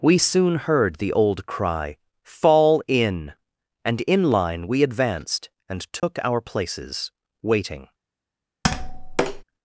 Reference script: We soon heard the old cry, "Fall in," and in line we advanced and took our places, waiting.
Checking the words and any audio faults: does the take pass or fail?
fail